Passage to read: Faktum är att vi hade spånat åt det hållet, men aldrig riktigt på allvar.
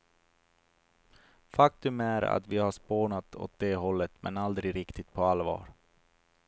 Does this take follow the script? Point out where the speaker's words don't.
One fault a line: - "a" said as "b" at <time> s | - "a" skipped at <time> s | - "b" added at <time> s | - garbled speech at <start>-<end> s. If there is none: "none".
- "hade" said as "har" at 2.6 s